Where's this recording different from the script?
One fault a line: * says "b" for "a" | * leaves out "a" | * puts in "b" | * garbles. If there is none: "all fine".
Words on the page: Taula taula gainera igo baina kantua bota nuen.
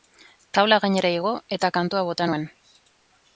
* leaves out "taula"
* says "eta" for "baina"